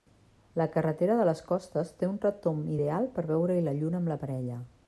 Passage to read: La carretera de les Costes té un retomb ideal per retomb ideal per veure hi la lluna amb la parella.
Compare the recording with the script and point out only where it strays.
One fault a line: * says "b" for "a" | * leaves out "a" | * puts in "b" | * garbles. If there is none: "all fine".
* leaves out "retomb ideal per"